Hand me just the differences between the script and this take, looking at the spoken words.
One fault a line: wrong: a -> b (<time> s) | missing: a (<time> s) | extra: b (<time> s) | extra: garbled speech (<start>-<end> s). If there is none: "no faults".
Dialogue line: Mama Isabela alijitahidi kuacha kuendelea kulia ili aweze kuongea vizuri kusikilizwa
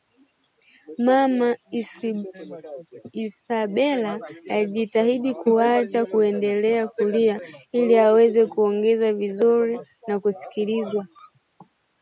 extra: na (10.1 s)